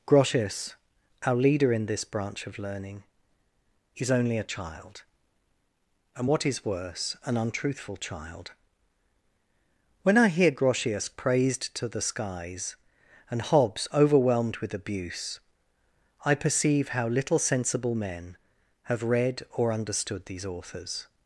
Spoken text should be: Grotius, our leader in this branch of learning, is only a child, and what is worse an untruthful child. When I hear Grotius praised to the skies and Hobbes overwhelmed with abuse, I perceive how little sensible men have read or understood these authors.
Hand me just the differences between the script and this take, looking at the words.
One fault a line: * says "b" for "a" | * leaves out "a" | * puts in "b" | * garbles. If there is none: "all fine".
all fine